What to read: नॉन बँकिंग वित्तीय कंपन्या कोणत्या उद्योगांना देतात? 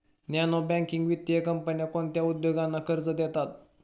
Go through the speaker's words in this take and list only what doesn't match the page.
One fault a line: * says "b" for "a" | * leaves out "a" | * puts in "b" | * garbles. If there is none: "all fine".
* puts in "कर्ज"